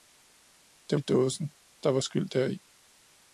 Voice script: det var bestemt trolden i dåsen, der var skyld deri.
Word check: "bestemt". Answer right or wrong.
wrong